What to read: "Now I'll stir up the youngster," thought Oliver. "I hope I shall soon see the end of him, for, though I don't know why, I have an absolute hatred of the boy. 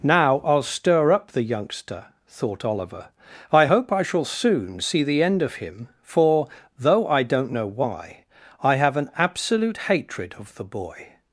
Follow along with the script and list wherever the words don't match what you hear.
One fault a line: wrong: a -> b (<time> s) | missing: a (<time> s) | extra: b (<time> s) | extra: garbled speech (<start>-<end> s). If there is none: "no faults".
no faults